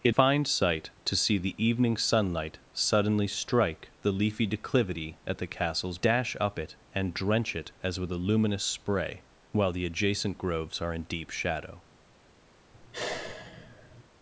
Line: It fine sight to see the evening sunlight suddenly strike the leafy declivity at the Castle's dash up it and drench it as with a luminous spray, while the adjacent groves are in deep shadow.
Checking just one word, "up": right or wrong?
right